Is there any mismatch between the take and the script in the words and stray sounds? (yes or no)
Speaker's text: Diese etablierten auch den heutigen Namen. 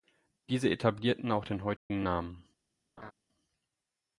yes